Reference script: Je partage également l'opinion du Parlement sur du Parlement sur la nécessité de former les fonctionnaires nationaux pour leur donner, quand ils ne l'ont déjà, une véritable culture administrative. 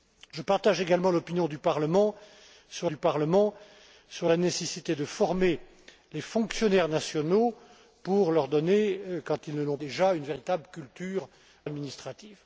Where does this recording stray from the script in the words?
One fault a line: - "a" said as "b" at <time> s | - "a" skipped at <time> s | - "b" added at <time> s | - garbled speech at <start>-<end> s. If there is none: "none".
none